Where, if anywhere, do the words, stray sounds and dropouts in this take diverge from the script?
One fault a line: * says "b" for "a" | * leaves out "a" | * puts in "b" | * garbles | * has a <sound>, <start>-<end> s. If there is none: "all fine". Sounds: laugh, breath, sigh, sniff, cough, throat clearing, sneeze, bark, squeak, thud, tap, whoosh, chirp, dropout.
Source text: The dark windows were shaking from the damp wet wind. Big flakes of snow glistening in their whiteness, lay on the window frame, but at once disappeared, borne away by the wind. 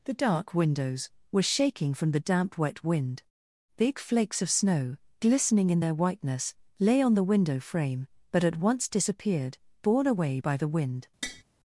* has a tap, 11.2-11.4 s